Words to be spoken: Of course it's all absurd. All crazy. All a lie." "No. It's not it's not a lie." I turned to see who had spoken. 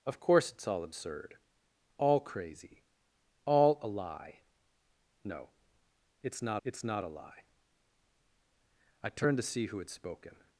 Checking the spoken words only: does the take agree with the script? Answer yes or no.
yes